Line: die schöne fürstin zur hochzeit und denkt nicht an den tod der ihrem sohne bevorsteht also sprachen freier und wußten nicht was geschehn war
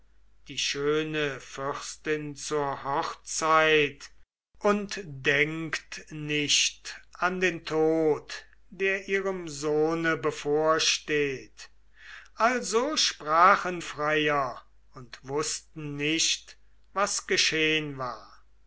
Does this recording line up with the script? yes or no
yes